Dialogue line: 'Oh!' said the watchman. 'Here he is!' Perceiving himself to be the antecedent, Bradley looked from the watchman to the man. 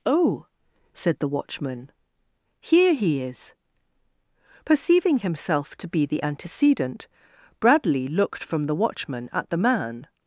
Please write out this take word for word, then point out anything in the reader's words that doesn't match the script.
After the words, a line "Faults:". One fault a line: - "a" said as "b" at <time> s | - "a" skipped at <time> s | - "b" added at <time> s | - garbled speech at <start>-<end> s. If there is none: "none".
'Oh!' said the watchman. 'Here he is!' Perceiving himself to be the antecedent, Bradley looked from the watchman at the man.
Faults:
- "to" said as "at" at 9.3 s